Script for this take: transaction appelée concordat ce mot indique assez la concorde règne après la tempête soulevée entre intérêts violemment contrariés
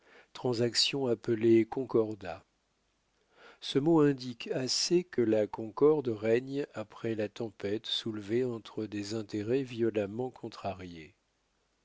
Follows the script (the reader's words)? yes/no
no